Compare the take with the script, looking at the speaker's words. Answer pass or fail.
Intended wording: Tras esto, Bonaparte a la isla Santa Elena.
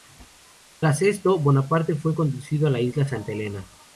fail